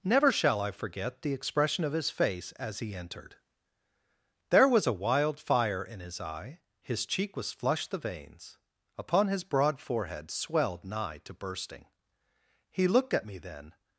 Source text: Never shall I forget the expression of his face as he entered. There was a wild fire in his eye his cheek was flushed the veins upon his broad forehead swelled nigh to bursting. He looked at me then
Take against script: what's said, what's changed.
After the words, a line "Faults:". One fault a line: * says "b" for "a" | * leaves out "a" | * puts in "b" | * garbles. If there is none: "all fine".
Never shall I forget the expression of his face as he entered. There was a wild fire in his eye his cheek was flushed the veins upon his broad forehead swelled nigh to bursting. He looked at me then
Faults:
all fine